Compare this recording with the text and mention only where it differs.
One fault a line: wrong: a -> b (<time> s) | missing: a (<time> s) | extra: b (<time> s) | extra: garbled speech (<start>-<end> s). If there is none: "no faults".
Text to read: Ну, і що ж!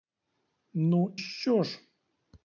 missing: і (1.2 s)